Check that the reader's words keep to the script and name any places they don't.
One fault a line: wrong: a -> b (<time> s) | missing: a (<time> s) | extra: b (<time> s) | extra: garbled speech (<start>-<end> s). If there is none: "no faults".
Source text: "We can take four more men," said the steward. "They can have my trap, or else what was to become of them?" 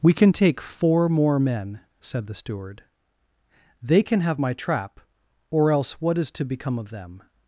wrong: was -> is (6.2 s)